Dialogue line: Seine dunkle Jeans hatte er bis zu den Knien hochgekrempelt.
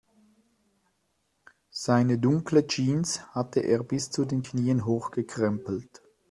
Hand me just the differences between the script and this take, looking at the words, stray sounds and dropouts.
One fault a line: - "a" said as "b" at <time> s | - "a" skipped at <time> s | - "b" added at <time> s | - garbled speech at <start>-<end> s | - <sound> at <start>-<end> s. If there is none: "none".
none